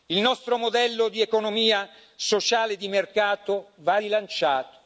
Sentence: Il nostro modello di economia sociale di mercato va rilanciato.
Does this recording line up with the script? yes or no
yes